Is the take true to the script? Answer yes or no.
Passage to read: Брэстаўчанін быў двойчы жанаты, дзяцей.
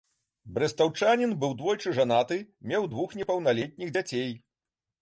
no